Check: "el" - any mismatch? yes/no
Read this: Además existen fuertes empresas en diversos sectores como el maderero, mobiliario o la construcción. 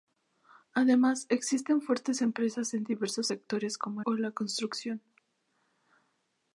yes